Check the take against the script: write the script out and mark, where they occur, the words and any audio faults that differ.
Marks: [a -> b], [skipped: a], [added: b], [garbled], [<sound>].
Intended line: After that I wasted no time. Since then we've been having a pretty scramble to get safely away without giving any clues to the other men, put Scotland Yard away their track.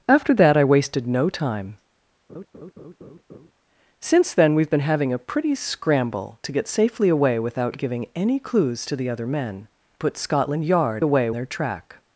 After that I wasted no time. [laugh] Since then we've been having a pretty scramble to get safely away without giving any clues to the other men, put Scotland Yard away their track.